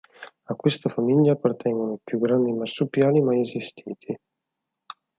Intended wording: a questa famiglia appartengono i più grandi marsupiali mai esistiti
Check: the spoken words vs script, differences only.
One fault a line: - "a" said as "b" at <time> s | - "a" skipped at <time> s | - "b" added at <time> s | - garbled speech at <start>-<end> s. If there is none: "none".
none